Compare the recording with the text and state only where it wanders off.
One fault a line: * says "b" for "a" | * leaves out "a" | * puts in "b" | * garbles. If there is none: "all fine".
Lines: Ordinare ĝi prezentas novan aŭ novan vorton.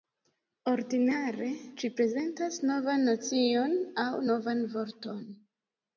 * puts in "nocion"